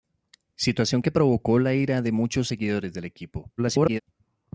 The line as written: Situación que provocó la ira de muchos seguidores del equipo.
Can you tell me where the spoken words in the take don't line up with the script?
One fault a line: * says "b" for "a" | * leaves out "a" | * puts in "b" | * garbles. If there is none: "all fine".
* garbles